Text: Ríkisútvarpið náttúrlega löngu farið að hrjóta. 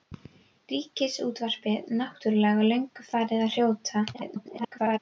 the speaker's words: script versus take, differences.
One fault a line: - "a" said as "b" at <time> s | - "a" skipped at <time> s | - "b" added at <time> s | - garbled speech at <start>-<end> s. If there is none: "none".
- garbled speech at 4.1-5.0 s